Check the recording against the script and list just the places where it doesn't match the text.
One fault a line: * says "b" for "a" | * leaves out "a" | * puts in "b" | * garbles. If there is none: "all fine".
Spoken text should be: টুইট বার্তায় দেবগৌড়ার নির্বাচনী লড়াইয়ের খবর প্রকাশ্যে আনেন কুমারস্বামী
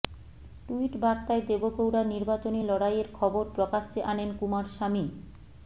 all fine